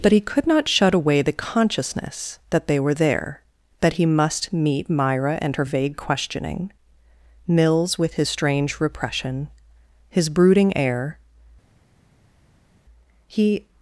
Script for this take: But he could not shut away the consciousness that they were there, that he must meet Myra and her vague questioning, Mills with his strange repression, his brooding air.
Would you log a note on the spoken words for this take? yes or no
yes